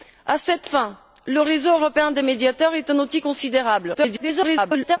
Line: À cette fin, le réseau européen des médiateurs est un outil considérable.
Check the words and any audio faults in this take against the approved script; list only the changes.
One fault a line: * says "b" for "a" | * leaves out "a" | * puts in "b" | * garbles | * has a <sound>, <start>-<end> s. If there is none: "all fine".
* garbles